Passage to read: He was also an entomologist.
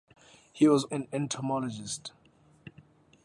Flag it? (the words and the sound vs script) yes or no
yes